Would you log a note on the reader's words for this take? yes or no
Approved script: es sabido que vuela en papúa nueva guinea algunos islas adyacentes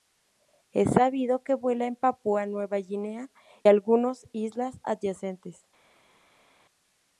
no